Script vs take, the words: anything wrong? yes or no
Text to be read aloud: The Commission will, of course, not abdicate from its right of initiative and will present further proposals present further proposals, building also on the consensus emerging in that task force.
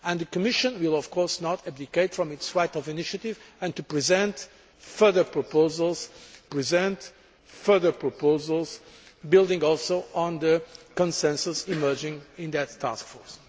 no